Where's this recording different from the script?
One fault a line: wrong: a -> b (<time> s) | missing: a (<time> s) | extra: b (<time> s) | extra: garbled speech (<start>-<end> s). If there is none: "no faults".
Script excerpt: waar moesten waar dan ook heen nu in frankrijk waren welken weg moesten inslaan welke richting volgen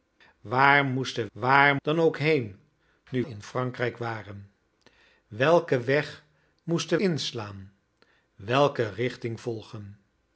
no faults